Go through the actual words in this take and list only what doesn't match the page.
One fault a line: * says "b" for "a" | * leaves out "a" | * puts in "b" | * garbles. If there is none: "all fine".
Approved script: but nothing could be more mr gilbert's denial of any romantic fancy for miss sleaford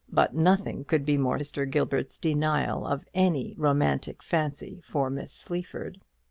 all fine